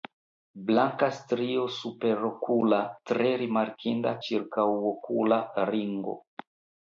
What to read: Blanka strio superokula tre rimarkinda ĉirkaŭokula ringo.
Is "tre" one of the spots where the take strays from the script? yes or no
no